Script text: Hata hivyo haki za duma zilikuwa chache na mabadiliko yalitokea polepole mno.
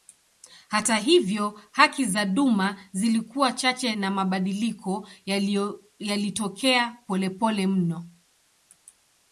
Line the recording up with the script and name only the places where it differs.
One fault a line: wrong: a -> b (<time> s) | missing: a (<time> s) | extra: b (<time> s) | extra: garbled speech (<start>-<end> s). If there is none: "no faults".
no faults